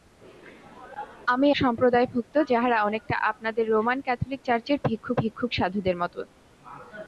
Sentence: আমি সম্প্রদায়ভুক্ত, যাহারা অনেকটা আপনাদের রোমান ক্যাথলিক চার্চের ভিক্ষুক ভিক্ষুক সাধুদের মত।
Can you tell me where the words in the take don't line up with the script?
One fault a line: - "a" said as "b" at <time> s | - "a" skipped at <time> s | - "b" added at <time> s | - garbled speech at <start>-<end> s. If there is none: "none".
none